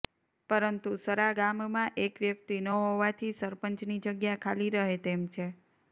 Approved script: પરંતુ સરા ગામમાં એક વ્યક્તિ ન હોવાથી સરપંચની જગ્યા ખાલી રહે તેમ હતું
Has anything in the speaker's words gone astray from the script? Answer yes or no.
yes